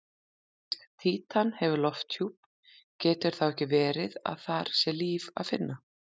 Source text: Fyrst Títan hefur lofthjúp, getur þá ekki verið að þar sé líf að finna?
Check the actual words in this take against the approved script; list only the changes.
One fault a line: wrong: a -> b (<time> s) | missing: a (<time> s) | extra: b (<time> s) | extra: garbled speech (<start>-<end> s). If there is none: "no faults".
no faults